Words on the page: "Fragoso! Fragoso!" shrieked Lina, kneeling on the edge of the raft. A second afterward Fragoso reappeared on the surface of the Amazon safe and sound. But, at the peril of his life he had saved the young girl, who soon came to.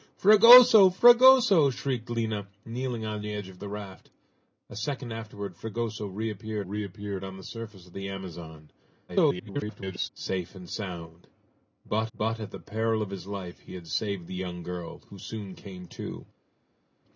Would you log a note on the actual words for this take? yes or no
yes